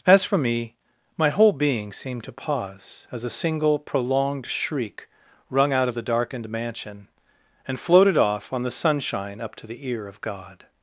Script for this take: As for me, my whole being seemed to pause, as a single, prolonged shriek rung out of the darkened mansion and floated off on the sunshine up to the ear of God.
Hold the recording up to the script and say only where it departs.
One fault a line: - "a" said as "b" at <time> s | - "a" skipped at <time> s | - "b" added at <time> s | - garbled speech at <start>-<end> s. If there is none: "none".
none